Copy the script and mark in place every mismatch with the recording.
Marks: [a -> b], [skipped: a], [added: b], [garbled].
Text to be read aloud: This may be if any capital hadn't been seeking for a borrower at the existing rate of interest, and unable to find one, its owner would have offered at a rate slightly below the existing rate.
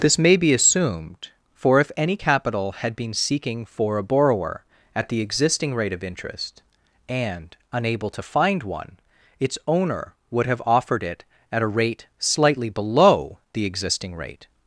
This may be [added: assumed for] if any capital [hadn't -> had] been seeking for a borrower at the existing rate of interest, and unable to find one, its owner would have offered [added: it] at a rate slightly below the existing rate.